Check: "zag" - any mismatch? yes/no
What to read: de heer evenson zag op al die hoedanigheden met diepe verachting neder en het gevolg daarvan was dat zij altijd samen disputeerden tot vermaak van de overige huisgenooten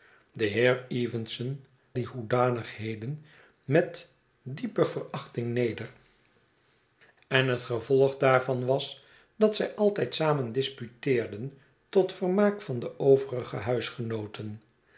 yes